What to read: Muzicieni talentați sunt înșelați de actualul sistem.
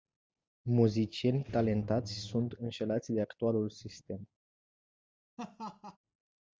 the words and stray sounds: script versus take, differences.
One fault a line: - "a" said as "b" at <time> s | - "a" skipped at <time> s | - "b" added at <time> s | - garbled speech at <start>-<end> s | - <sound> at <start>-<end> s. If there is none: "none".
- laugh at 5.4-6.0 s